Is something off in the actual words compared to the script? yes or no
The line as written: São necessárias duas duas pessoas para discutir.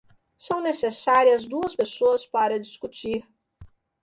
yes